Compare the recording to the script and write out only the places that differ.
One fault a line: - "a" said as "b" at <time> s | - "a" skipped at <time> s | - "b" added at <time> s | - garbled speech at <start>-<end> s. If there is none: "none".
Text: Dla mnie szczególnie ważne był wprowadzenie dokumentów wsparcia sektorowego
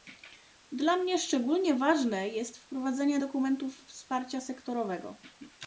- "był" said as "jest" at 2.3 s